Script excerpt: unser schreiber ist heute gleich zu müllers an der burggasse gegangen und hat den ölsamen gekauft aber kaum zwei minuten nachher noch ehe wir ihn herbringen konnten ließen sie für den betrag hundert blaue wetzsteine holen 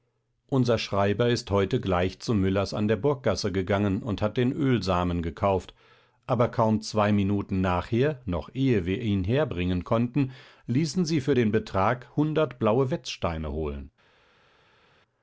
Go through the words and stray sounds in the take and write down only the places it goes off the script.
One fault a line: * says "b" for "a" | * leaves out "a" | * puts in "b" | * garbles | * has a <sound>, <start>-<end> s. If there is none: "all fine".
all fine